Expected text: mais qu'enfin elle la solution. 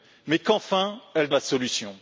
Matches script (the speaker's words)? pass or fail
pass